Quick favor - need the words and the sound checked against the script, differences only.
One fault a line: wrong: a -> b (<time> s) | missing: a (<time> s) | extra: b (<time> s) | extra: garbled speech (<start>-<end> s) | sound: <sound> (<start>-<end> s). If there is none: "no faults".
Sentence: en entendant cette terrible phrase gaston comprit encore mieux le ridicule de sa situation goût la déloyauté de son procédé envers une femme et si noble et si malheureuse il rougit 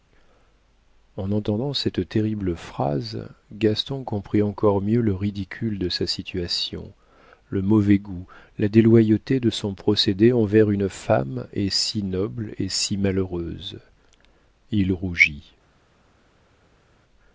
extra: le mauvais (7.5 s)